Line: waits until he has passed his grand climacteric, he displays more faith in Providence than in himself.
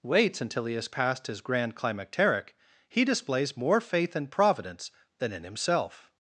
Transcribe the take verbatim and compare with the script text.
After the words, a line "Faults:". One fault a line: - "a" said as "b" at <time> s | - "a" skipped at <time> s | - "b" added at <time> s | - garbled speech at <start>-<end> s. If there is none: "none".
waits until he has passed his grand climacteric, he displays more faith in Providence than in himself.
Faults:
none